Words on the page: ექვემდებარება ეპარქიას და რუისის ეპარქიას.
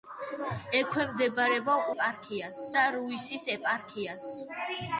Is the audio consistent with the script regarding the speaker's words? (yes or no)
yes